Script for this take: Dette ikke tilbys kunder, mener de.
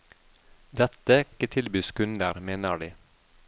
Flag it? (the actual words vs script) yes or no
no